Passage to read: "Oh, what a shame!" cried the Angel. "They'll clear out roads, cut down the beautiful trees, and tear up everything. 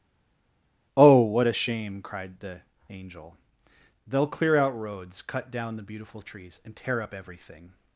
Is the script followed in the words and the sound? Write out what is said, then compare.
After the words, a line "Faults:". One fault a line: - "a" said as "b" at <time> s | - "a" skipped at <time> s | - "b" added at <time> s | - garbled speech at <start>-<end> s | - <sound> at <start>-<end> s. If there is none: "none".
"Oh, what a shame!" cried the Angel. "They'll clear out roads, cut down the beautiful trees, and tear up everything.
Faults:
none